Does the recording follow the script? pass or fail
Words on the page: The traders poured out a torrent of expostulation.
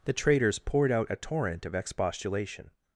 pass